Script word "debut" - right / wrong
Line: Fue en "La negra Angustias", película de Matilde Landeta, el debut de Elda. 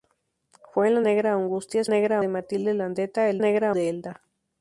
wrong